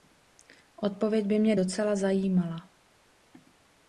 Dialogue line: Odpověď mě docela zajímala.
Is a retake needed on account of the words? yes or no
yes